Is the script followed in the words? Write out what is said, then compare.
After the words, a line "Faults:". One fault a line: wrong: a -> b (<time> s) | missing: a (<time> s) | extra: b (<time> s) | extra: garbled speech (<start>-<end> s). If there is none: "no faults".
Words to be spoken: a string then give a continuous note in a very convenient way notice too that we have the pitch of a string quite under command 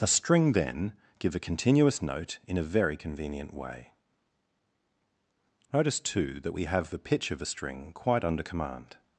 a string then give a continuous note in a very convenient way notice too that we have the pitch of a string quite under command
Faults:
no faults